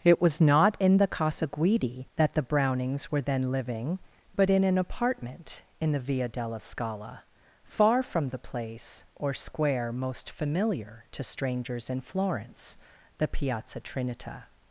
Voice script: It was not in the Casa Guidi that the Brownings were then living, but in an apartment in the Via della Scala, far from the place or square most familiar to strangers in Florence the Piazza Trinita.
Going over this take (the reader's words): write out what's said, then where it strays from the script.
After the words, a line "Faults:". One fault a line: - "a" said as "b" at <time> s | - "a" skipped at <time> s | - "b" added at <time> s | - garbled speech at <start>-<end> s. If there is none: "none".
It was not in the Casa Guidi that the Brownings were then living, but in an apartment in the Via della Scala, far from the place or square most familiar to strangers in Florence the Piazza Trinita.
Faults:
none